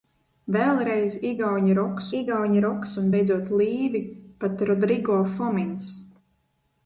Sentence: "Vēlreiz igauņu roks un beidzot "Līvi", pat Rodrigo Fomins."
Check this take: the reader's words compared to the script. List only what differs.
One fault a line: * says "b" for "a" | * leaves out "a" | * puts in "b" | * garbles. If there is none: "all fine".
* puts in "igauņu roks"